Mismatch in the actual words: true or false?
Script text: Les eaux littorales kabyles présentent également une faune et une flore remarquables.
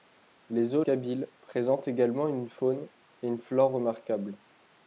true